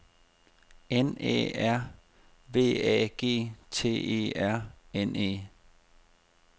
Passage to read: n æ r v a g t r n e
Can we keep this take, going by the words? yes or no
no